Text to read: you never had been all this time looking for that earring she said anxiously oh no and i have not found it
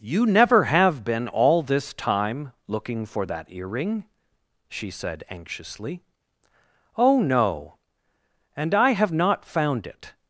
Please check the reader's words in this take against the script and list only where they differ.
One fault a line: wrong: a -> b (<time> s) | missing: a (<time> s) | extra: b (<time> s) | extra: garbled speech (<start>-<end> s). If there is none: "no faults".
wrong: had -> have (0.6 s)